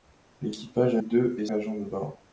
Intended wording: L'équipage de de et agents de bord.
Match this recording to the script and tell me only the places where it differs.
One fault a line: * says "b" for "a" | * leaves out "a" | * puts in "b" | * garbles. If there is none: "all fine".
all fine